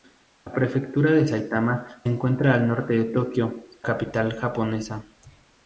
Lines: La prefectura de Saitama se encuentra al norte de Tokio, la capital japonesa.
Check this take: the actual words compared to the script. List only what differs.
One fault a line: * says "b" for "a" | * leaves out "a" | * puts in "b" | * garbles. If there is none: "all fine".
* leaves out "se"
* leaves out "la"